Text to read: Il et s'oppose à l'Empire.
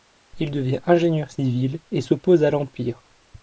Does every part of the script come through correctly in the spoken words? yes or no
no